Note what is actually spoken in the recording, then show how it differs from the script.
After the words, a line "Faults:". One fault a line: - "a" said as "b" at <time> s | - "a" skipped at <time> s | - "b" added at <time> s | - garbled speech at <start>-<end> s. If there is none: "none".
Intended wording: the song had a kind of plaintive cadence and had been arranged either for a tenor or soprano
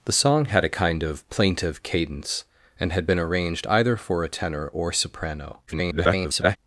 the song had a kind of plaintive cadence and had been arranged either for a tenor or soprano [garbled]
Faults:
- garbled speech at 5.7-6.6 s